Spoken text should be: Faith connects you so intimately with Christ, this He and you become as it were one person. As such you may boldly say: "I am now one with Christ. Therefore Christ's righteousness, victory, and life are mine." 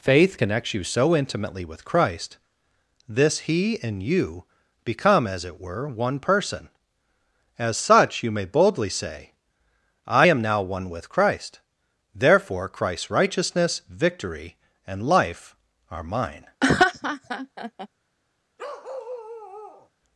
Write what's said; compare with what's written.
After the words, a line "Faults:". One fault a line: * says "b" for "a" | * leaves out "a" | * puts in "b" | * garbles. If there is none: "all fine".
Faith connects you so intimately with Christ, this He and you become as it were one person. As such you may boldly say: "I am now one with Christ. Therefore Christ's righteousness, victory, and life are mine."
Faults:
all fine